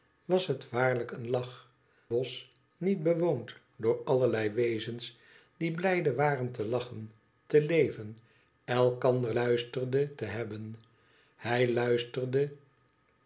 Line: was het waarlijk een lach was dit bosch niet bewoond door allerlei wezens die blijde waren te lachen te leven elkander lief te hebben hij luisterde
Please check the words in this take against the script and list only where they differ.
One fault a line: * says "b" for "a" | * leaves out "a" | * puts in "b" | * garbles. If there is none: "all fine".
* leaves out "was dit"
* says "luisterde" for "lief"